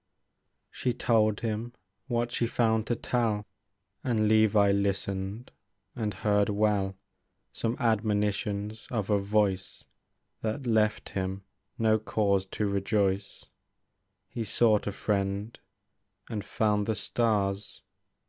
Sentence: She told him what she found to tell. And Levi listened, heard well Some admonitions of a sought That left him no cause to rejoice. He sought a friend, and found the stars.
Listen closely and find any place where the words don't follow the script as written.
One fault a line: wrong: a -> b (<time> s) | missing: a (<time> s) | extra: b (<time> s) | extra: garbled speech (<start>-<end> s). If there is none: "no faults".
extra: and (5.9 s)
wrong: sought -> voice (9.2 s)